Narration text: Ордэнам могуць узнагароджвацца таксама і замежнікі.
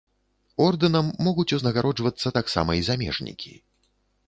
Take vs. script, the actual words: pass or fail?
pass